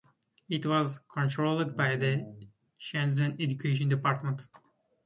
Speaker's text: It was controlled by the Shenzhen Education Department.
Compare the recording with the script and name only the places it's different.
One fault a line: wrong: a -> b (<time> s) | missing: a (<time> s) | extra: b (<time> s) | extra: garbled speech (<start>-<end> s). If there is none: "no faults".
no faults